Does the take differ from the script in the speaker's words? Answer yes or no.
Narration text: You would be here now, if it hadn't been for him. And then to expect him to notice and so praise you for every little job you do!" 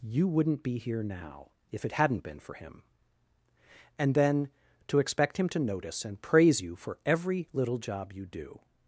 yes